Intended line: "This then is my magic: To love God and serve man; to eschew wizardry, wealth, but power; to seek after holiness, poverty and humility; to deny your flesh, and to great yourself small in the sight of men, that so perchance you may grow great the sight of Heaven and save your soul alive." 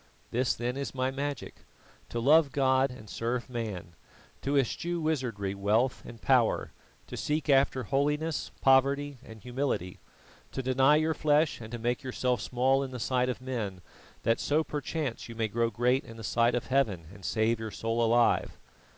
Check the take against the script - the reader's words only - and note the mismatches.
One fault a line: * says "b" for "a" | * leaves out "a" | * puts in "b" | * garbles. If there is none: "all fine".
* says "and" for "but"
* says "make" for "great"
* puts in "in"